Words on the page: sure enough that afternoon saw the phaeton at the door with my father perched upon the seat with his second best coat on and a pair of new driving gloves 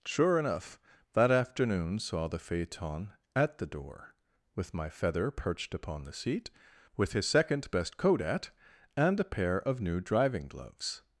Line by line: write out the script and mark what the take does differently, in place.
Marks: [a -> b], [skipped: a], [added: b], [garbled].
sure enough that afternoon saw the phaeton at the door with my [father -> feather] perched upon the seat with his second best coat [on -> at] and a pair of new driving gloves